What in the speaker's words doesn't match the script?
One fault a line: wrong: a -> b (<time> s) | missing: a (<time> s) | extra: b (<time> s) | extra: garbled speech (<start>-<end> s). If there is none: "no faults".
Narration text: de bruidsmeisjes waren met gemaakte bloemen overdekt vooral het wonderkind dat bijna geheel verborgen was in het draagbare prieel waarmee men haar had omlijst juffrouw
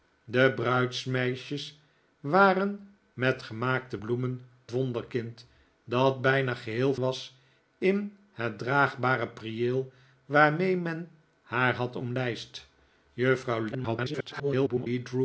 missing: overdekt vooral het (4.4 s)
missing: verborgen (6.9 s)
extra: garbled speech (13.7-14.9 s)